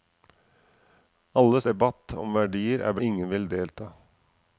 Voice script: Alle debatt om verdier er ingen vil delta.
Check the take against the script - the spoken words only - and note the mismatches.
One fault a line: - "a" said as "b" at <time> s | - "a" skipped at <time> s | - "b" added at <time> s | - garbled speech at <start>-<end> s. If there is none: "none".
none